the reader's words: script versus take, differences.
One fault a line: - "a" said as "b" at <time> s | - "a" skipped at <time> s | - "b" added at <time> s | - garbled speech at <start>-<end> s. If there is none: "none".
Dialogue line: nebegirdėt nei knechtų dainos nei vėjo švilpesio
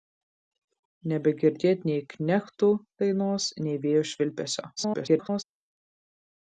- garbled speech at 4.8-5.4 s